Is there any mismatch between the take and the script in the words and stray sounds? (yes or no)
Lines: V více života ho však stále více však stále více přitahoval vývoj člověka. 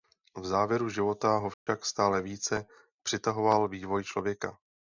yes